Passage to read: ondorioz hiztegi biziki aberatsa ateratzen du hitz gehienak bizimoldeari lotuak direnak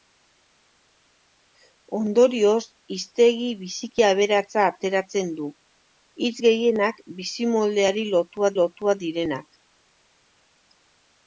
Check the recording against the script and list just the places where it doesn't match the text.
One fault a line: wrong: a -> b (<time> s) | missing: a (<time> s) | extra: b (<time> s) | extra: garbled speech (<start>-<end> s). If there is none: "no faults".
extra: lotuak (8.6 s)